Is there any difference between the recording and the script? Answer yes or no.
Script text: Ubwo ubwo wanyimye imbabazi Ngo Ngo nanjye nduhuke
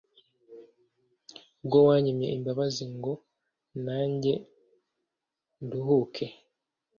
yes